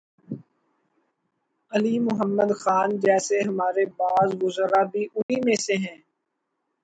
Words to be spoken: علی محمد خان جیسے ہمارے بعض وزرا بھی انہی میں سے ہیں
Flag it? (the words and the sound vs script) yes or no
yes